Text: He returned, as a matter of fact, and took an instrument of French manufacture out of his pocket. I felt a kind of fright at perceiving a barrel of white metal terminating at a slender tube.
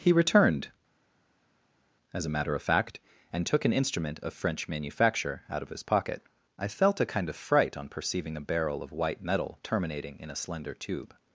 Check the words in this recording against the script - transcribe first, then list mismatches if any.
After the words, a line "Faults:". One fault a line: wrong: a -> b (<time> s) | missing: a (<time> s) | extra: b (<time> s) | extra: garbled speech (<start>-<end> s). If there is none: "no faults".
He returned, as a matter of fact, and took an instrument of French manufacture out of his pocket. I felt a kind of fright on perceiving a barrel of white metal terminating in a slender tube.
Faults:
wrong: at -> on (7.8 s)
wrong: at -> in (10.2 s)